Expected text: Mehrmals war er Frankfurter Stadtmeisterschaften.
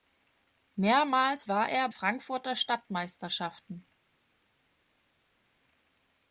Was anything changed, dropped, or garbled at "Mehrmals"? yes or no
no